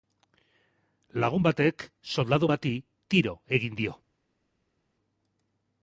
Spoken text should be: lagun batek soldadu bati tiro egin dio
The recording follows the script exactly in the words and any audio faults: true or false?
true